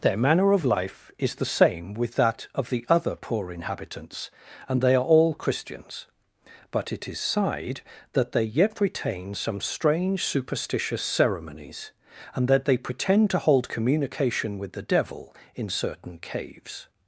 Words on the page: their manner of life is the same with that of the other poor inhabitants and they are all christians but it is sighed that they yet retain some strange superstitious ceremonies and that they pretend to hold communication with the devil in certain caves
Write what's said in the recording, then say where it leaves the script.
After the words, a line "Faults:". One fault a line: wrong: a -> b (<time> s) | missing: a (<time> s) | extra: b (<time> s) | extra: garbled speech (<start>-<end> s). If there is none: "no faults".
their manner of life is the same with that of the other poor inhabitants and they are all christians but it is sighed that they yet retain some strange superstitious ceremonies and that they pretend to hold communication with the devil in certain caves
Faults:
no faults